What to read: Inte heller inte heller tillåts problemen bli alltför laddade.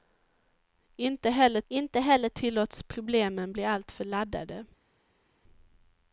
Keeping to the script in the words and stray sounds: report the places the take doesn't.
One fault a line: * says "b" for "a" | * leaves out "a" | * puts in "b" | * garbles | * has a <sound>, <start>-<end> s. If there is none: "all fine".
all fine